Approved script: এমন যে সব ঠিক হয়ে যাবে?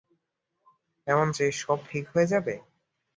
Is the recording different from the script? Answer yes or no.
no